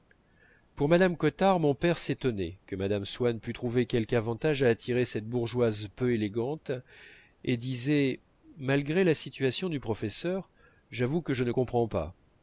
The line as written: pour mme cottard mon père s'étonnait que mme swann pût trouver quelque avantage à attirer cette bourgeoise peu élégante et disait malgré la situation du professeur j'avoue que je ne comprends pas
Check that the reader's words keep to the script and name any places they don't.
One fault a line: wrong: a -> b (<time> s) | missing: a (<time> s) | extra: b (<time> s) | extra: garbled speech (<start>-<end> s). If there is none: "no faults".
no faults